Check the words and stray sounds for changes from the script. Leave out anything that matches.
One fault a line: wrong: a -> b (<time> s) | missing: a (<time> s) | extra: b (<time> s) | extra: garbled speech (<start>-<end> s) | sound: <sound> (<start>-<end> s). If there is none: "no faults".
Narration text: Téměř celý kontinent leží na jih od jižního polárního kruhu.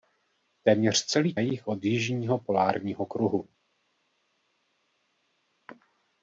missing: kontinent leží na (1.3 s)